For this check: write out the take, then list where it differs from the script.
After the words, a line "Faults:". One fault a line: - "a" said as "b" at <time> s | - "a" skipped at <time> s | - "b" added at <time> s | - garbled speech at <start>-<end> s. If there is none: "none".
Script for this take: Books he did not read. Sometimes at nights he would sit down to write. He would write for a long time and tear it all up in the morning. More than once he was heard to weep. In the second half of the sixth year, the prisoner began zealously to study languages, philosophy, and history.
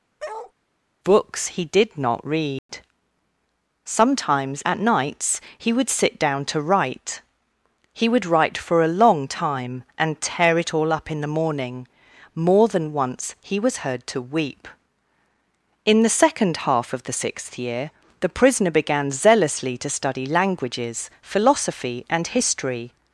Books he did not read. Sometimes at nights he would sit down to write. He would write for a long time and tear it all up in the morning. More than once he was heard to weep. In the second half of the sixth year, the prisoner began zealously to study languages, philosophy, and history.
Faults:
none